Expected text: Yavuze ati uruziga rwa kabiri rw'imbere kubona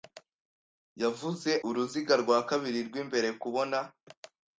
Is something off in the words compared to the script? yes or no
yes